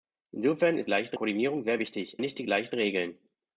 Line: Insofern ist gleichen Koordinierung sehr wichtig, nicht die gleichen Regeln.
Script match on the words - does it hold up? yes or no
yes